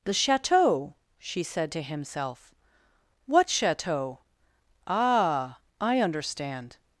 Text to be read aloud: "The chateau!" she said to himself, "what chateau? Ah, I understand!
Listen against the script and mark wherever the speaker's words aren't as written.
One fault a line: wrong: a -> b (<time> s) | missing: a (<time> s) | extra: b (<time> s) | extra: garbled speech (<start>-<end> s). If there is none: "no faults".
no faults